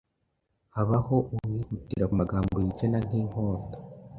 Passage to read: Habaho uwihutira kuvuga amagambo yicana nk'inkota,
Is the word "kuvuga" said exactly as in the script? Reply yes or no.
no